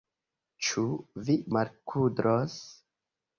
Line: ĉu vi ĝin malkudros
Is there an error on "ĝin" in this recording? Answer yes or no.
yes